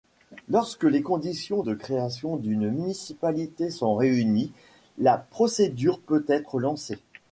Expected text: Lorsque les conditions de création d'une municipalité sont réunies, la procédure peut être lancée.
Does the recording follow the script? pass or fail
pass